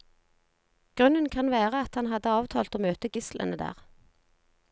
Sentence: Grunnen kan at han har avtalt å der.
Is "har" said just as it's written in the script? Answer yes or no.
no